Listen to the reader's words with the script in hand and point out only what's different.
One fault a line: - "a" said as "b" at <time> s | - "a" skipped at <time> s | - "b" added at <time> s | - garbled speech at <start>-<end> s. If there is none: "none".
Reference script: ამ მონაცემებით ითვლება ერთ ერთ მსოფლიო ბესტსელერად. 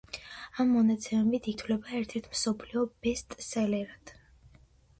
none